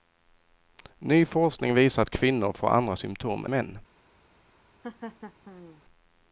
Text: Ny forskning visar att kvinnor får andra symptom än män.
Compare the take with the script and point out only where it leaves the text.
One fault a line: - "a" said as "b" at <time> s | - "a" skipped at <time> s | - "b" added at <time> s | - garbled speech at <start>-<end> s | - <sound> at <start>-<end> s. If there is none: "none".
- "än" skipped at 3.5 s
- laugh at 4.8-5.8 s